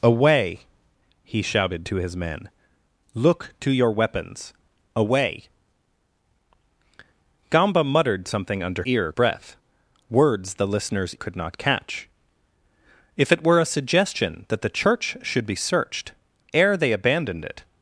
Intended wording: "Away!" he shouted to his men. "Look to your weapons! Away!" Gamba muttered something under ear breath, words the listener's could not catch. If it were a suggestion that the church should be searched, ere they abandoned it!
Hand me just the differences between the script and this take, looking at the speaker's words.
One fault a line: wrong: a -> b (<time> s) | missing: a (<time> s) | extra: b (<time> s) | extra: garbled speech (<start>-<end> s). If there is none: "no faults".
no faults